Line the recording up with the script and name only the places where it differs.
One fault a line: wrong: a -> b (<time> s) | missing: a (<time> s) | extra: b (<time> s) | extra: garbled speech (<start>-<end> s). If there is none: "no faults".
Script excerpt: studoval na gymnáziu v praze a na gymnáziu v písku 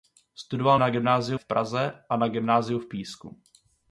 no faults